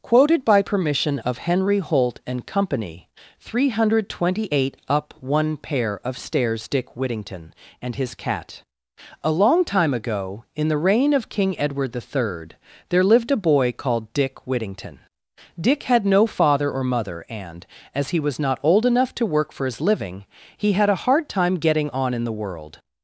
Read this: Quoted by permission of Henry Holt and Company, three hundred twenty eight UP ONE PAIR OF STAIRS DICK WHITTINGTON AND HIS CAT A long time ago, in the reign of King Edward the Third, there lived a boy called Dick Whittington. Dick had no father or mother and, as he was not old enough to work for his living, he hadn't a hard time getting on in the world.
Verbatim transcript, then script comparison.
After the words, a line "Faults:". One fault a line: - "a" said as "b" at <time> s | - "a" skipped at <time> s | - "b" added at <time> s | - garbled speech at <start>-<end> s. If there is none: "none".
Quoted by permission of Henry Holt and Company, three hundred twenty eight UP ONE PAIR OF STAIRS DICK WHITTINGTON AND HIS CAT A long time ago, in the reign of King Edward the Third, there lived a boy called Dick Whittington. Dick had no father or mother and, as he was not old enough to work for his living, he had a hard time getting on in the world.
Faults:
- "hadn't" said as "had" at 20.7 s